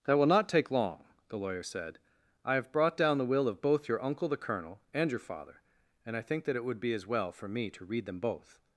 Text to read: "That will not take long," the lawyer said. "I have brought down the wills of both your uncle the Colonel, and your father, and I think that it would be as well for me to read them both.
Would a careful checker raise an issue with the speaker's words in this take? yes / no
yes